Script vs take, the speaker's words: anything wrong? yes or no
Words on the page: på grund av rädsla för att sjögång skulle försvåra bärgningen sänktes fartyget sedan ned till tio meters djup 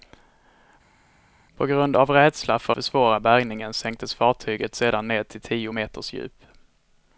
yes